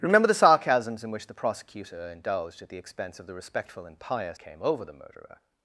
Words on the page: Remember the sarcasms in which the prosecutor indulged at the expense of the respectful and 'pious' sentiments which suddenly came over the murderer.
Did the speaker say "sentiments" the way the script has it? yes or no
no